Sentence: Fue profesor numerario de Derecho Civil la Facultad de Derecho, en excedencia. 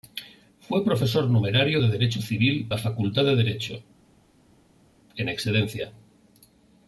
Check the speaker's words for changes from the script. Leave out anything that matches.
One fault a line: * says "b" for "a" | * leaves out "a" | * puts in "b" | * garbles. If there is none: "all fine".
all fine